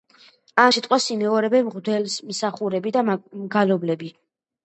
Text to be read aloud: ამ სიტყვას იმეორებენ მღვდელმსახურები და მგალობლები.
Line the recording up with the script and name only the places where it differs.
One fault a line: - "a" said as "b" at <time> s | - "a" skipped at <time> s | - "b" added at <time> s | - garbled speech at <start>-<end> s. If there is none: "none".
none